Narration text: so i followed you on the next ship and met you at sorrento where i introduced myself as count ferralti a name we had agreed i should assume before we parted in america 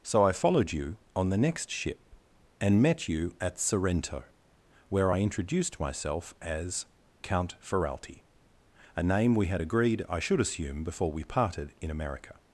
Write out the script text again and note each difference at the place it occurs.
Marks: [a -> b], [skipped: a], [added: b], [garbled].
so i followed you on the next ship and met you at sorrento where i introduced myself as count ferralti a name we had agreed i should assume before we parted in america